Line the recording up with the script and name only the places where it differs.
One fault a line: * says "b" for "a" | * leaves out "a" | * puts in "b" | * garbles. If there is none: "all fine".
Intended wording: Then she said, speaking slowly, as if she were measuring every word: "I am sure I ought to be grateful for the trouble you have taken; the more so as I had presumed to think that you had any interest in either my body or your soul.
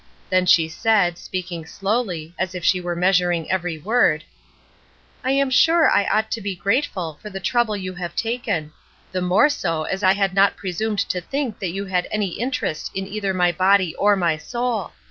* puts in "not"
* says "my" for "your"